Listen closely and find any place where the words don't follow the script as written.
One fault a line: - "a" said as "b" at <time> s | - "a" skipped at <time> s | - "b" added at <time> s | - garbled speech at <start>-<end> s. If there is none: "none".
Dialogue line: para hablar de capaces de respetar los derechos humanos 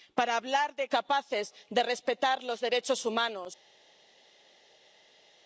none